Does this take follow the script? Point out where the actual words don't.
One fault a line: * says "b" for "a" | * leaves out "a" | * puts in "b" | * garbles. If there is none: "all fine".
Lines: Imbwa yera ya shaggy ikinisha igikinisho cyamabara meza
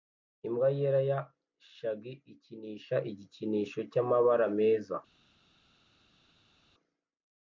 all fine